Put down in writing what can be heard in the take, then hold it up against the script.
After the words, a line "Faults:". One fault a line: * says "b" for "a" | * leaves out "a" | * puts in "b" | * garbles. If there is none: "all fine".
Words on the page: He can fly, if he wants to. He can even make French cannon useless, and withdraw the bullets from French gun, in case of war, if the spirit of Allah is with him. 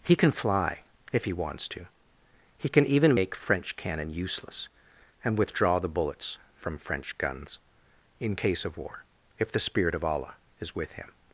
He can fly, if he wants to. He can even make French cannon useless, and withdraw the bullets from French guns, in case of war, if the spirit of Allah is with him.
Faults:
* says "guns" for "gun"